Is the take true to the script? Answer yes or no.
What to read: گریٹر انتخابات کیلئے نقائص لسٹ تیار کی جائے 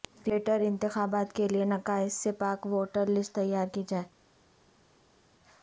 no